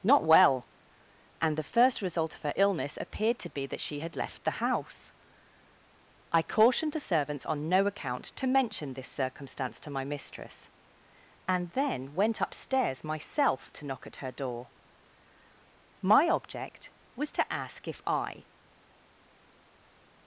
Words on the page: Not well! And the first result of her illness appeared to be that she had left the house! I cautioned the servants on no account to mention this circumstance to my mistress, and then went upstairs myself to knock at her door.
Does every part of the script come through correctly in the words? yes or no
no